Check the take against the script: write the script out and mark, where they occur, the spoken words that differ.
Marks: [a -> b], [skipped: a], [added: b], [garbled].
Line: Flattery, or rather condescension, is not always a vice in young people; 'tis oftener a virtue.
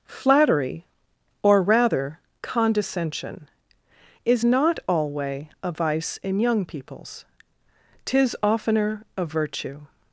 Flattery, or rather condescension, is not [always -> alway] a vice in young [people; -> peoples] 'tis oftener a virtue.